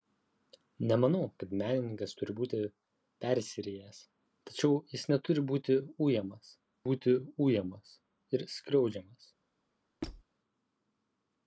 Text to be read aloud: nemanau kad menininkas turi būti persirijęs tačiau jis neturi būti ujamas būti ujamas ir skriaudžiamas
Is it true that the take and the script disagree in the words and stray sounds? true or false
true